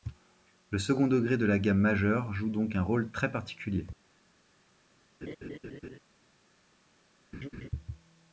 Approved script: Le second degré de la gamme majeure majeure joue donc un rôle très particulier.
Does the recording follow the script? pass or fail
fail